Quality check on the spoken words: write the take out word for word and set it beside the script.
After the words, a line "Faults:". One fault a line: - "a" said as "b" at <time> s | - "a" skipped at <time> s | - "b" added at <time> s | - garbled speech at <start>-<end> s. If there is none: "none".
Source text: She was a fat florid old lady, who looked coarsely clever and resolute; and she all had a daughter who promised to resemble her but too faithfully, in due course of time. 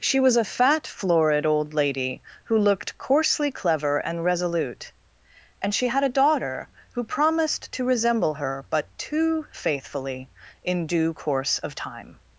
She was a fat florid old lady, who looked coarsely clever and resolute; and she had a daughter who promised to resemble her but too faithfully, in due course of time.
Faults:
- "all" skipped at 5.9 s